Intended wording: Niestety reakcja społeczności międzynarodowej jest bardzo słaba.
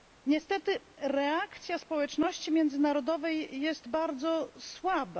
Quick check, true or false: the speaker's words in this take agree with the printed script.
true